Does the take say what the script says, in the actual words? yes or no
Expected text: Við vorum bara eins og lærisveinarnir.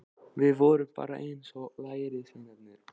yes